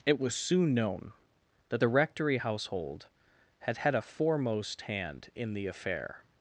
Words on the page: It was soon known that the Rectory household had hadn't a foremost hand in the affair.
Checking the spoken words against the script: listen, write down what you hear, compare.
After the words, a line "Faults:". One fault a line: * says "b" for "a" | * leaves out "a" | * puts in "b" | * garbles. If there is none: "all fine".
It was soon known that the Rectory household had had a foremost hand in the affair.
Faults:
* says "had" for "hadn't"